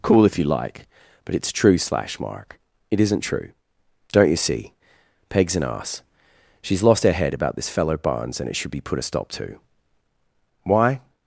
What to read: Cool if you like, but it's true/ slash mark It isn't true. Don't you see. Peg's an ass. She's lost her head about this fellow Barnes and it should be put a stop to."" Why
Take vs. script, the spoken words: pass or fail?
pass